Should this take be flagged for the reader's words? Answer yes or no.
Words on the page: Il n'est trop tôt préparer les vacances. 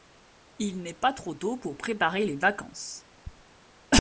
yes